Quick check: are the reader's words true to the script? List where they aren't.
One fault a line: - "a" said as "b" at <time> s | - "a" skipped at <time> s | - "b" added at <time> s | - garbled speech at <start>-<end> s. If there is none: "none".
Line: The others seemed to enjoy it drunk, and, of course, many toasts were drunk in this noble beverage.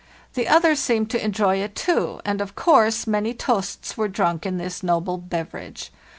- "drunk" said as "too" at 1.8 s